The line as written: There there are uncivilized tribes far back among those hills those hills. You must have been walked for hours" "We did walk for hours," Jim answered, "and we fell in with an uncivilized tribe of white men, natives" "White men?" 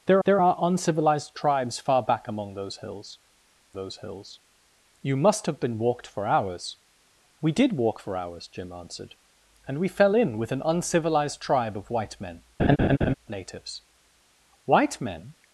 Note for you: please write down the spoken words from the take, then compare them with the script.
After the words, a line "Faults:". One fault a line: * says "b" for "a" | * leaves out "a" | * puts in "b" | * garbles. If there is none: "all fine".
There there are uncivilized tribes far back among those hills those hills. You must have been walked for hours" "We did walk for hours," Jim answered, "and we fell in with an uncivilized tribe of white men, natives" "White men?"
Faults:
all fine